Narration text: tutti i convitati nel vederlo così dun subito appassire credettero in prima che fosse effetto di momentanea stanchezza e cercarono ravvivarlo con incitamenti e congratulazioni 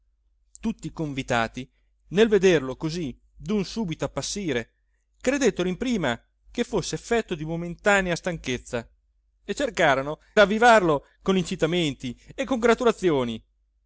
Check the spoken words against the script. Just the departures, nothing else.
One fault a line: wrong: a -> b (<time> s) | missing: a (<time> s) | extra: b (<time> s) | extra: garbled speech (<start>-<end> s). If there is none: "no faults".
no faults